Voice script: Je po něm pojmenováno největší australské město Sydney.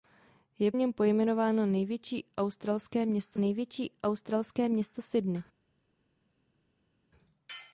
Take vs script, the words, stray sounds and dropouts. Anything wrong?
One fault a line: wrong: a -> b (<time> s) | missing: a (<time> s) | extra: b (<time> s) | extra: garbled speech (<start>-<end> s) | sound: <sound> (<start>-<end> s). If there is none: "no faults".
missing: po (0.7 s)
extra: největší australské město (3.4 s)